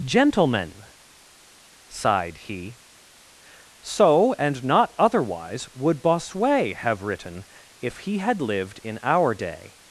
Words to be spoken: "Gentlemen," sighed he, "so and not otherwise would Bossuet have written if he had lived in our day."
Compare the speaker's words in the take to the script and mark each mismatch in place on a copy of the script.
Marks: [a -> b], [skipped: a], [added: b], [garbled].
"Gentlemen," sighed he, "so and not otherwise would Bossuet have written if he had lived in our day."